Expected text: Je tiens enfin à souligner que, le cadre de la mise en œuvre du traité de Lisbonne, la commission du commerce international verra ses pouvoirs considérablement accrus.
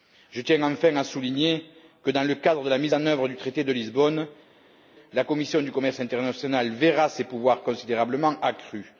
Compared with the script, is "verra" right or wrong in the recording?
right